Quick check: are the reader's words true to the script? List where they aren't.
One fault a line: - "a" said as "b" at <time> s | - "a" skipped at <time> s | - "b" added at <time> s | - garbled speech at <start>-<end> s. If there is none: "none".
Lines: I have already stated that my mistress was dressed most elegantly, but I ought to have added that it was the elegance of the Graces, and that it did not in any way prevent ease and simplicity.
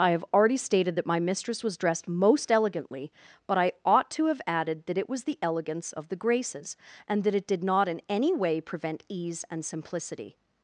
none